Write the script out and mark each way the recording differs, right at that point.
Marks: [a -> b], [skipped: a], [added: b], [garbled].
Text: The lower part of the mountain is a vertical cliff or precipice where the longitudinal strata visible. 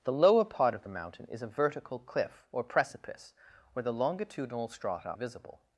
The lower part of the mountain is a vertical cliff or precipice where the longitudinal strata visible.